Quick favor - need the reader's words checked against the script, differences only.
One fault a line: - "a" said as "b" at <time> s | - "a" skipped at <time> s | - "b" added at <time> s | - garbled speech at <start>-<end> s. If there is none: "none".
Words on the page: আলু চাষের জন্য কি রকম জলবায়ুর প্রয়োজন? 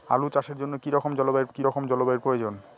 - "কি রকম জলবায়ুর" added at 1.5 s